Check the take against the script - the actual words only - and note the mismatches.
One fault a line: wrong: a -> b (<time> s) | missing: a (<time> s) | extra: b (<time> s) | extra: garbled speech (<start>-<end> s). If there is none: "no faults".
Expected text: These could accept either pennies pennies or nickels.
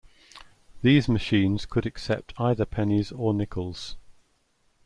extra: machines (1.1 s)
missing: pennies (3.1 s)